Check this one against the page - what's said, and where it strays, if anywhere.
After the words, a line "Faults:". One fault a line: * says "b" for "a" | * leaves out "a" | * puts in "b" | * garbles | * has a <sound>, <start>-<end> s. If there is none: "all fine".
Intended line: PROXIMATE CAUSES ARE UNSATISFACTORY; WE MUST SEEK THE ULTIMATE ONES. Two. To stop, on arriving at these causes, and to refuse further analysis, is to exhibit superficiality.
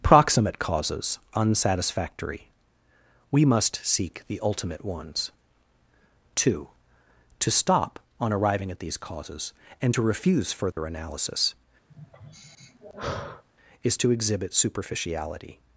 PROXIMATE CAUSES UNSATISFACTORY; WE MUST SEEK THE ULTIMATE ONES. Two. To stop, on arriving at these causes, and to refuse further analysis, is to exhibit superficiality.
Faults:
* leaves out "ARE"
* has a dropout, 10.7-10.8 s
* has a sigh, 11.9-13.4 s